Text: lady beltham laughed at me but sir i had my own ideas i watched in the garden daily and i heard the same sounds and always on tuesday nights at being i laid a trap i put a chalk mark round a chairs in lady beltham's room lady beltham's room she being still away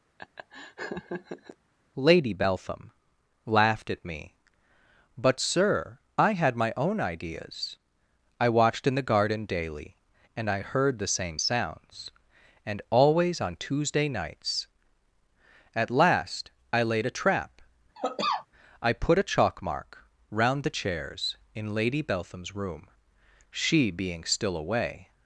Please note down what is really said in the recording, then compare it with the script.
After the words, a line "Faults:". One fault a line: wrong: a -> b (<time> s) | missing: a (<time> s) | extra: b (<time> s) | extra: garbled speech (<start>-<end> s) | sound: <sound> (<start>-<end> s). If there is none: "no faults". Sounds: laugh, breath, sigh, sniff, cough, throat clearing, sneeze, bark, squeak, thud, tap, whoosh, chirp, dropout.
lady beltham laughed at me but sir i had my own ideas i watched in the garden daily and i heard the same sounds and always on tuesday nights at last i laid a trap i put a chalk mark round the chairs in lady beltham's room she being still away
Faults:
sound: laugh (0.2-1.6 s)
wrong: being -> last (15.9 s)
sound: cough (17.9-18.5 s)
wrong: a -> the (20.6 s)
missing: lady beltham's room (22.9 s)